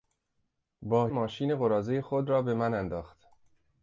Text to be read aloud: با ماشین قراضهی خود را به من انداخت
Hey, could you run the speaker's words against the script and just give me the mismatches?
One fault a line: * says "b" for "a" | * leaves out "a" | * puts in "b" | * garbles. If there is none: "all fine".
all fine